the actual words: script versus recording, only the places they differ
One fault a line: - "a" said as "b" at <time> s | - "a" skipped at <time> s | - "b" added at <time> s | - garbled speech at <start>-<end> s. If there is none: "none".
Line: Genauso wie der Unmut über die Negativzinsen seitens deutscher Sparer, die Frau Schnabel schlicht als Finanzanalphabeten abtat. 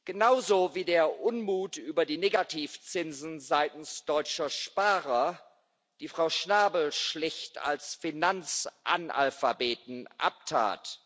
none